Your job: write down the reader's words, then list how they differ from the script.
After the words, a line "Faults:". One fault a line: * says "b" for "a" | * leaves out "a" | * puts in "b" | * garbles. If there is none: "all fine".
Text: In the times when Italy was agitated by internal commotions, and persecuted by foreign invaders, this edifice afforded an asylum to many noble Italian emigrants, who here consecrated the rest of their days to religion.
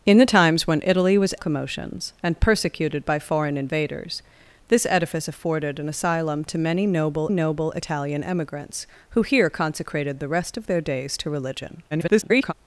In the times when Italy was commotions, and persecuted by foreign invaders, this edifice afforded an asylum to many noble noble Italian emigrants, who here consecrated the rest of their days to religion. [garbled]
Faults:
* leaves out "agitated by internal"
* puts in "noble"
* garbles